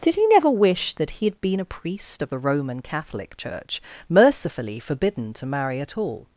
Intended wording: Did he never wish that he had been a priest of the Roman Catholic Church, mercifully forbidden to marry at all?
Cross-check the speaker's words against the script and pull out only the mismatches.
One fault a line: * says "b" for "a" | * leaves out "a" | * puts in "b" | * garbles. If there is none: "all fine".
all fine